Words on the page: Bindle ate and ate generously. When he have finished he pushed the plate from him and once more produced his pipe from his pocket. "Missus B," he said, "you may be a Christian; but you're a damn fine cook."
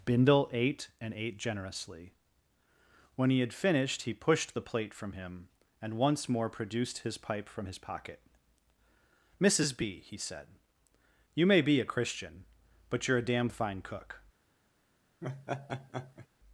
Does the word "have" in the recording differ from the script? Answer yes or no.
yes